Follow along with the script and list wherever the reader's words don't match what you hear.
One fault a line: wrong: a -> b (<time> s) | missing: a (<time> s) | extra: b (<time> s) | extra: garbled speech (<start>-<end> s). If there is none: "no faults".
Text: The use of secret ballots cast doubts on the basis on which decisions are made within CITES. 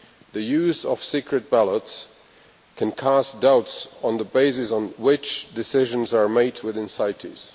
extra: can (2.8 s)